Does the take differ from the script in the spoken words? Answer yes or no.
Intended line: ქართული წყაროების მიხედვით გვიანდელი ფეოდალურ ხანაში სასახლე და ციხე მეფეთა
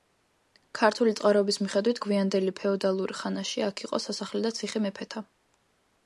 yes